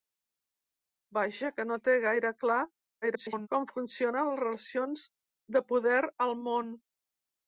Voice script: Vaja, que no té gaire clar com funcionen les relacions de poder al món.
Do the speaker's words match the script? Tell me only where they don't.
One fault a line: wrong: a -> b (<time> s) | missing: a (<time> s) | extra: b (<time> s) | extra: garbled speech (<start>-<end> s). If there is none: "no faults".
extra: garbled speech (3.0-3.5 s)